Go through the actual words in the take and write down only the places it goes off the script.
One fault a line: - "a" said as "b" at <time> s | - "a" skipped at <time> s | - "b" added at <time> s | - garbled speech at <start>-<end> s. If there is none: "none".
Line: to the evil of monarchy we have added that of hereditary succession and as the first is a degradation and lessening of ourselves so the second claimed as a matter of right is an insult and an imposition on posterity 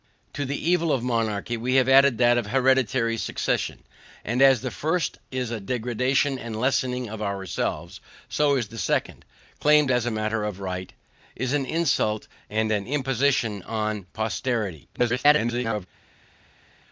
- garbled speech at 14.9-15.9 s